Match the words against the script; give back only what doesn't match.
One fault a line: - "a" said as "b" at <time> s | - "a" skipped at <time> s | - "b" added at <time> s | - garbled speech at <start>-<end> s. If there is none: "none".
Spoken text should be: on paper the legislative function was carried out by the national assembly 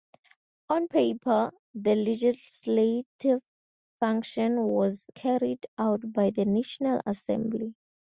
none